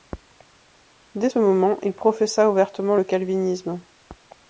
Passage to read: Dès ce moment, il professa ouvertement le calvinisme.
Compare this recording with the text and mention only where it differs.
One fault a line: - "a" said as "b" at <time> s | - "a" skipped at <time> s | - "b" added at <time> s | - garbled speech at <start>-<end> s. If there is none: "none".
none